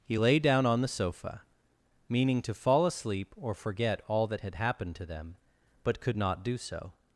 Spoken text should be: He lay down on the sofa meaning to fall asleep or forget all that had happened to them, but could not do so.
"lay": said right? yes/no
yes